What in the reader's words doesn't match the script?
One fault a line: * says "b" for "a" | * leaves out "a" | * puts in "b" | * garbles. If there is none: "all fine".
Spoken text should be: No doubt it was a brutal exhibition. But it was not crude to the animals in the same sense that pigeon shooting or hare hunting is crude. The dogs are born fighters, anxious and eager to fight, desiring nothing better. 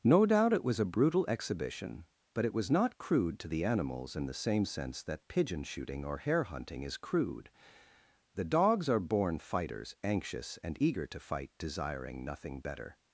all fine